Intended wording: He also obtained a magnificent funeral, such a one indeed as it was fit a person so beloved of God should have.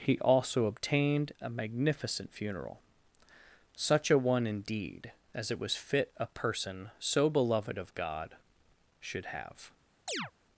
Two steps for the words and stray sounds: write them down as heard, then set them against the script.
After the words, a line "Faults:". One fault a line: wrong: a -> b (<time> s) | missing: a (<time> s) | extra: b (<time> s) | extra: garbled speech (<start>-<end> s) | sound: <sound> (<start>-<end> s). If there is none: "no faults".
He also obtained a magnificent funeral, such a one indeed as it was fit a person so beloved of God should have.
Faults:
sound: chirp (10.1-10.3 s)